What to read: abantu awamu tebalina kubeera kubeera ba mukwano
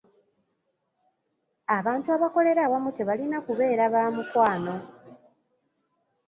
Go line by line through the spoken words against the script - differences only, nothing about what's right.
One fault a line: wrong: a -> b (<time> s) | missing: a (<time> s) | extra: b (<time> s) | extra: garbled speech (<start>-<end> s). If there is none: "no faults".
extra: abakolera (2.1 s)
missing: kubeera (3.8 s)